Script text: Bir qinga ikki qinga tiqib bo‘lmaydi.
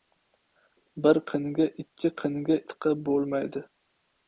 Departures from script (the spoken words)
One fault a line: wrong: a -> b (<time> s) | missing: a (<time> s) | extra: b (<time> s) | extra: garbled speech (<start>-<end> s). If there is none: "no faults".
no faults